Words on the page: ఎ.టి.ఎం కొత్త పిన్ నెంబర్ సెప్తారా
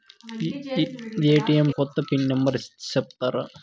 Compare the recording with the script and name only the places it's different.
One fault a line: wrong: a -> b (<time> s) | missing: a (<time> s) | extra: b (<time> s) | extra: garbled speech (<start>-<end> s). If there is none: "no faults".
no faults